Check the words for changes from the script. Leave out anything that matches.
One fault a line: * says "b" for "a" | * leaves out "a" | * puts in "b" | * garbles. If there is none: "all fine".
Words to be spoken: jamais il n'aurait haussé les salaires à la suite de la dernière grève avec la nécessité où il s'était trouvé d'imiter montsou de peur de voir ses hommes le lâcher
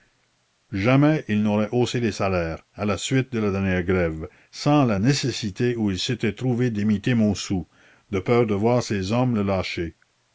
* says "sans" for "avec"